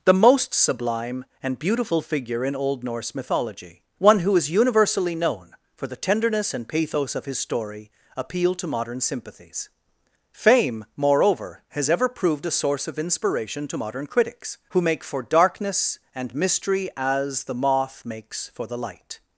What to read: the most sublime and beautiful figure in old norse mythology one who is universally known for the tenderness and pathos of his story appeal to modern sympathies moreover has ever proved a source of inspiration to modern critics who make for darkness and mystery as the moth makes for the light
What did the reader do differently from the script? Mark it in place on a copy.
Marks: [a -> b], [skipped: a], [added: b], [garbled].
the most sublime and beautiful figure in old norse mythology one who is universally known for the tenderness and pathos of his story appeal to modern sympathies [added: fame] moreover has ever proved a source of inspiration to modern critics who make for darkness and mystery as the moth makes for the light